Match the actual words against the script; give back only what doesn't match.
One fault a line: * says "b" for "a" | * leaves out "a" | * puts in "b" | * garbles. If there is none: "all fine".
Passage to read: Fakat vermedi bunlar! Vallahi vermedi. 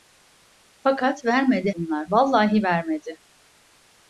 all fine